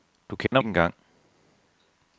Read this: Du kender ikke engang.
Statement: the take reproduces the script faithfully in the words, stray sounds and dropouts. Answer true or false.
false